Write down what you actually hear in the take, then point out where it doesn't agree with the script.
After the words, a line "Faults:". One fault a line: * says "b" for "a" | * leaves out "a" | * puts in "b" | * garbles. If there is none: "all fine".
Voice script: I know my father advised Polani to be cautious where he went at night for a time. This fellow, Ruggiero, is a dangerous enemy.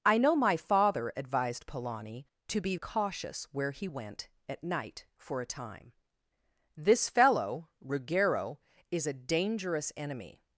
I know my father advised Polani to be cautious where he went at night for a time. This fellow, Ruggiero, is a dangerous enemy.
Faults:
all fine